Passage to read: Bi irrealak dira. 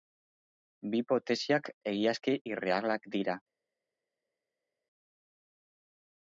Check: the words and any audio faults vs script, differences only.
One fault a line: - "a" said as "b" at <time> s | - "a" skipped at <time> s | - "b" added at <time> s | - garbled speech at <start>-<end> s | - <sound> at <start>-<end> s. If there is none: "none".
- "hipotesiak egiazki" added at 1.0 s